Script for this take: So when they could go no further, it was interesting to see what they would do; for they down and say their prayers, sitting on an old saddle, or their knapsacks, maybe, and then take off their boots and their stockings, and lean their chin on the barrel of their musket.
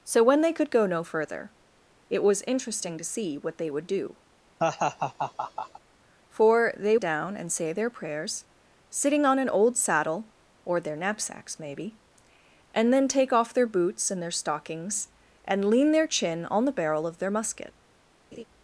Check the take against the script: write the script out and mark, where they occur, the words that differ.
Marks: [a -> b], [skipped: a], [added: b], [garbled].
So when they could go no further, it was interesting to see what they would do; for they down and say their prayers, sitting on an old saddle, or their knapsacks, maybe, and then take off their boots and their stockings, and lean their chin on the barrel of their musket.